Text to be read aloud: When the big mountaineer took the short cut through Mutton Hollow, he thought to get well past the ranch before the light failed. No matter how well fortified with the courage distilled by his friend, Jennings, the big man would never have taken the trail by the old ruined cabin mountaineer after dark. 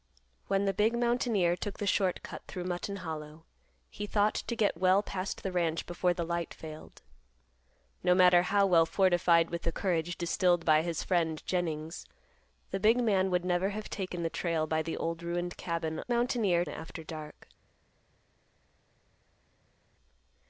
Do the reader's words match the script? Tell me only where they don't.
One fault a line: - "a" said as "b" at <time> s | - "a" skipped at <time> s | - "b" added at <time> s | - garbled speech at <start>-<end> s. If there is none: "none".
none